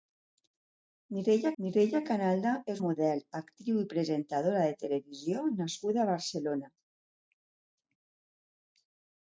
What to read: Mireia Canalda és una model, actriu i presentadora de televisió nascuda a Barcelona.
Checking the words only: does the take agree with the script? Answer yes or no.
no